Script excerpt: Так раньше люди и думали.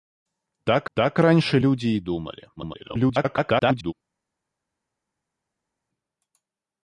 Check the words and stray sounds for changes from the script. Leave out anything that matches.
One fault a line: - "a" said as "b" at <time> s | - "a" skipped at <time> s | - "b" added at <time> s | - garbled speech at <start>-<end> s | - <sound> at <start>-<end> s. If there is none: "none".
- "так" added at 0.9 s
- garbled speech at 2.6-3.9 s